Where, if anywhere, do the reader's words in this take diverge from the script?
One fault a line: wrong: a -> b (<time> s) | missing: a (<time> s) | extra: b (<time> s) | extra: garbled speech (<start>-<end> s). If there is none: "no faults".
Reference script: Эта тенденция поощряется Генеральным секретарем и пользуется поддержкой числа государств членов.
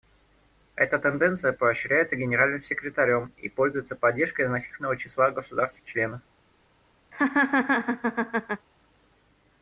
extra: значительного (4.5 s)